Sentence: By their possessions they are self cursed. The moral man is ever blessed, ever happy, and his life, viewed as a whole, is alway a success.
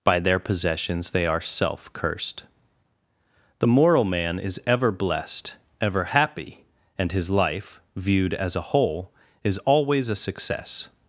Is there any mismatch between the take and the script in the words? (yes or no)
yes